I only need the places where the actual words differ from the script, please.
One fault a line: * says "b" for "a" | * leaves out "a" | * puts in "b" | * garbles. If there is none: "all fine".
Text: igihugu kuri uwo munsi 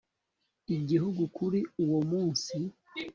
all fine